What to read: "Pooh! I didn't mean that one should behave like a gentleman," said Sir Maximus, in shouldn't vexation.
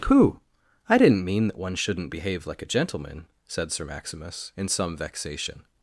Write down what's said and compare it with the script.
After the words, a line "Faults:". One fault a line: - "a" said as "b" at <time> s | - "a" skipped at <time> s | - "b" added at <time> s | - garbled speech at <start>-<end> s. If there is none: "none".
"Pooh! I didn't mean that one shouldn't behave like a gentleman," said Sir Maximus, in some vexation.
Faults:
- "should" said as "shouldn't" at 1.7 s
- "shouldn't" said as "some" at 4.7 s